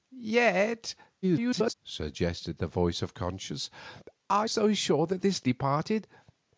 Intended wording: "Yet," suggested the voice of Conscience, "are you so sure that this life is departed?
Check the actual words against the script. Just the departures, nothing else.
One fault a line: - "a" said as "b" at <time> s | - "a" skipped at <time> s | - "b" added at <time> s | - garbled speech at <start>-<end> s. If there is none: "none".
- garbled speech at 1.2-1.7 s
- "you" skipped at 4.5 s
- "life is" skipped at 5.5 s